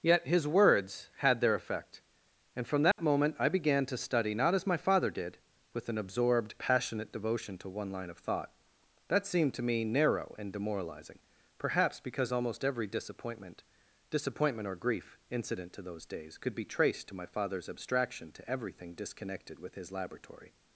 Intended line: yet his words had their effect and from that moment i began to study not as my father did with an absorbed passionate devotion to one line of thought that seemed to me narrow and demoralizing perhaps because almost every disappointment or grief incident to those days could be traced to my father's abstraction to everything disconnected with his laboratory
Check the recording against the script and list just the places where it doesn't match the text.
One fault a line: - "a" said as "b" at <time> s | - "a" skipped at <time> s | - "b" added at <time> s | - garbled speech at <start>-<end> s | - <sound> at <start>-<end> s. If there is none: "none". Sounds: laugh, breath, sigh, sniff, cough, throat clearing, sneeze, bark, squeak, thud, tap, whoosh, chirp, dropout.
- dropout at 2.9-3.0 s
- "disappointment" added at 14.1 s